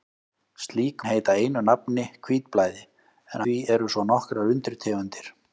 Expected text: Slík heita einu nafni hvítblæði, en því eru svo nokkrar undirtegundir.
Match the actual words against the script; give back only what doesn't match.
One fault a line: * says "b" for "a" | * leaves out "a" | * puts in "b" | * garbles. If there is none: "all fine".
all fine